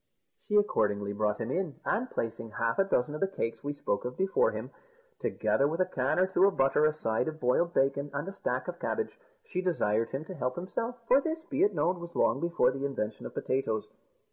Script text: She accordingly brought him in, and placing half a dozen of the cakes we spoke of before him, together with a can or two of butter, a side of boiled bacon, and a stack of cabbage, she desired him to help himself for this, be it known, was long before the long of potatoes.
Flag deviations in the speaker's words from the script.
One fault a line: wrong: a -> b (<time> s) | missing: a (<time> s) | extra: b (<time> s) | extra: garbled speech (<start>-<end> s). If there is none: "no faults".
wrong: long -> invention (12.8 s)